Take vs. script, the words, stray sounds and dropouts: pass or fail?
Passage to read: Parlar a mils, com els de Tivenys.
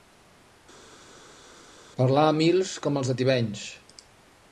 pass